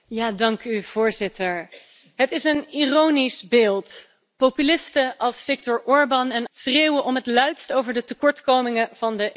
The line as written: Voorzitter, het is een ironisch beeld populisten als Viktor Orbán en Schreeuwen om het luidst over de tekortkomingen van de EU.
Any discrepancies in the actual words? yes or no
no